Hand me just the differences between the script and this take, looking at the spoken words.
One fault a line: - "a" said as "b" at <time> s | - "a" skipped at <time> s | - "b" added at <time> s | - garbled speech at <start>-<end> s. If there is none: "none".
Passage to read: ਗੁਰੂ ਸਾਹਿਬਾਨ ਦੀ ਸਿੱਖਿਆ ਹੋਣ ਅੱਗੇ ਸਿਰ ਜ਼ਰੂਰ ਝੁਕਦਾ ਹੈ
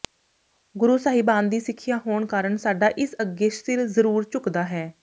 - "ਕਾਰਨ ਸਾਡਾ ਇਸ" added at 2.2 s